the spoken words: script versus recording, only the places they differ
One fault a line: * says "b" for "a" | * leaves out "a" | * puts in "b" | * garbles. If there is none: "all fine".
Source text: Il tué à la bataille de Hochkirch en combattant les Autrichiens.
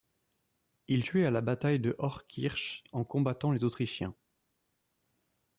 all fine